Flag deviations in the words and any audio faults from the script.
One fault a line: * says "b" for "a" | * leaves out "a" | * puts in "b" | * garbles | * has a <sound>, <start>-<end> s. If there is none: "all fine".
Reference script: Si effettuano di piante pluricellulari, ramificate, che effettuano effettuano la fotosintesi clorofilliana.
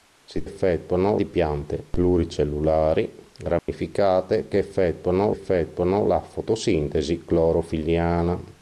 * has a dropout, 3.6-3.7 s